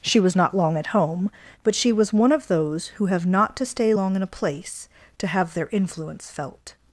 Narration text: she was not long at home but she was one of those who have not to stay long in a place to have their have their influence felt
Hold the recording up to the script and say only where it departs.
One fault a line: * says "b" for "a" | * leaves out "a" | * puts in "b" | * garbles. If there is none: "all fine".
* leaves out "have their"